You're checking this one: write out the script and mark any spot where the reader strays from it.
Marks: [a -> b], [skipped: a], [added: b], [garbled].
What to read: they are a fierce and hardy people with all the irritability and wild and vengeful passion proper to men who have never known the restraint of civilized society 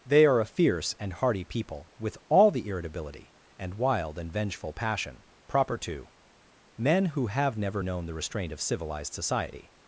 they are a fierce and hardy people with all the irritability and wild and vengeful passion proper to men who have never known the restraint of civilized society